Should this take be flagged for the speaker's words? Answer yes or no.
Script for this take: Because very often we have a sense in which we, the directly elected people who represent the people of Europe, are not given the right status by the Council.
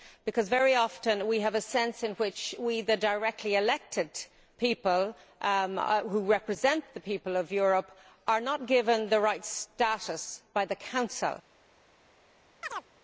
no